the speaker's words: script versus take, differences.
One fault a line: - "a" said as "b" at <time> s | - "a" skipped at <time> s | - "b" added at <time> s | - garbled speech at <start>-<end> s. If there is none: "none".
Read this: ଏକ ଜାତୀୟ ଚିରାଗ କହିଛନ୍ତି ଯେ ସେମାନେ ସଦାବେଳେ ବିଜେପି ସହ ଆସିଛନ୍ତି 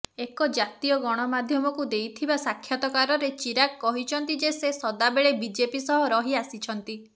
- "ଗଣମାଧ୍ୟମକୁ ଦେଇଥିବା ସାକ୍ଷାତକାରରେ" added at 1.0 s
- "ସେମାନେ" said as "ସେ" at 4.6 s
- "ରହି" added at 6.1 s